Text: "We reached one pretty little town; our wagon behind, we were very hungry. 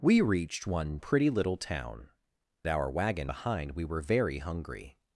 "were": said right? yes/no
yes